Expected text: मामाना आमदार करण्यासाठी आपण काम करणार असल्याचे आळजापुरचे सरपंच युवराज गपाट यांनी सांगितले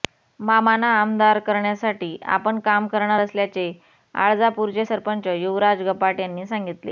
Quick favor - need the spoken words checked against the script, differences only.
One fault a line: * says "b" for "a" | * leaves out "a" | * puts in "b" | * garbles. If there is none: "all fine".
all fine